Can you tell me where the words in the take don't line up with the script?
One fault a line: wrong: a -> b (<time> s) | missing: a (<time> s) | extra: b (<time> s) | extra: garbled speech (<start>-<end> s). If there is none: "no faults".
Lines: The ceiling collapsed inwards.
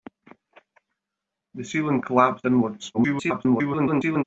extra: garbled speech (2.9-4.2 s)